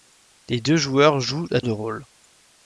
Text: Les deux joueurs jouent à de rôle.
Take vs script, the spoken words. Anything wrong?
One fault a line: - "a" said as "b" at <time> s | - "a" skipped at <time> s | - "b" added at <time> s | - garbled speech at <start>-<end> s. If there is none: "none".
none